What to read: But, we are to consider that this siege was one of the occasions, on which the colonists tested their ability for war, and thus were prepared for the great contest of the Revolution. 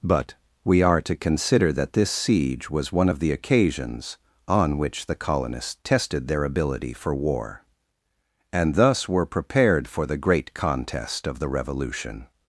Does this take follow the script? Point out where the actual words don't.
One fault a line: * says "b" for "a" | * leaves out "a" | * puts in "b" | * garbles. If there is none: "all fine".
all fine